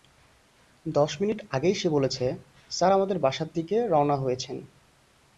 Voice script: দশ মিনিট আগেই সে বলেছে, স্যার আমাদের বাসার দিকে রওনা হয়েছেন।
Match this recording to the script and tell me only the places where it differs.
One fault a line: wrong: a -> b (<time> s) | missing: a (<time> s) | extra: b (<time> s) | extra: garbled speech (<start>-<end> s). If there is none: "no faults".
no faults